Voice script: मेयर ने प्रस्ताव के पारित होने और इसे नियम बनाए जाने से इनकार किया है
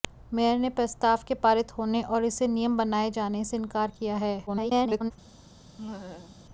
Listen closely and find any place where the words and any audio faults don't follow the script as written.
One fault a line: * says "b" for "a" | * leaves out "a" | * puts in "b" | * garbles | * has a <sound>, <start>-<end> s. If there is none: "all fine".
* garbles
* has a laugh, 5.8-6.4 s